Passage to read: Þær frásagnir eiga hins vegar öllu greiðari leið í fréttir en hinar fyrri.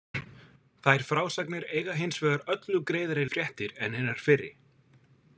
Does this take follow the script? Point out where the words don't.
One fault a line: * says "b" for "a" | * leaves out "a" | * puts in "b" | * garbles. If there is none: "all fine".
* leaves out "leið"